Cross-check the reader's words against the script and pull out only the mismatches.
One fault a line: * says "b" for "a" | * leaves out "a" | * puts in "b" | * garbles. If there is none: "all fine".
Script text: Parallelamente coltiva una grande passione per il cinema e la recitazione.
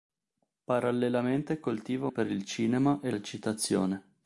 * leaves out "una grande passione"
* leaves out "la"